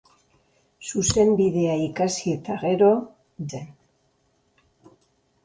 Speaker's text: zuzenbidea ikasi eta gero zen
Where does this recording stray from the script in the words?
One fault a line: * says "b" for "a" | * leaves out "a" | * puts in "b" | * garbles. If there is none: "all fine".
all fine